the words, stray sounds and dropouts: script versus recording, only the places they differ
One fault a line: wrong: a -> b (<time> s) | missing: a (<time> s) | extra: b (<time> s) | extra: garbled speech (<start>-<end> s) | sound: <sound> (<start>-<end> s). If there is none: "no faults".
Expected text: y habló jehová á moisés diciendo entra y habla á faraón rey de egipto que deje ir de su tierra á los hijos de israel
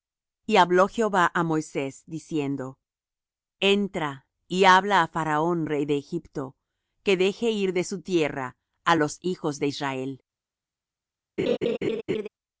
sound: laugh (11.4-12.3 s)